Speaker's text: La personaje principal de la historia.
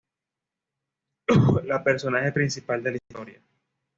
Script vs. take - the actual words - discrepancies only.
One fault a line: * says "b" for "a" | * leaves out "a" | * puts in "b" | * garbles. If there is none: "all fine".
all fine